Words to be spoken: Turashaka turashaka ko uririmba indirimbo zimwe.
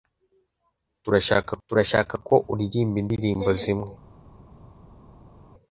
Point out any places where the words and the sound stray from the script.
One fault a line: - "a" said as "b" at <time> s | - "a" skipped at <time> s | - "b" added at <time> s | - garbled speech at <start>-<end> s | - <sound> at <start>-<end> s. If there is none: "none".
none